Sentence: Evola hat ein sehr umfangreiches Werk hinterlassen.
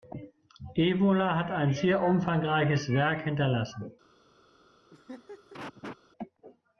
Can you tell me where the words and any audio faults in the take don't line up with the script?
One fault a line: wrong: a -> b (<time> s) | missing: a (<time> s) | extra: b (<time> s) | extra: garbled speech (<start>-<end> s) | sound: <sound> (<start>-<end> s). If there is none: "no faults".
sound: laugh (4.9-6.0 s)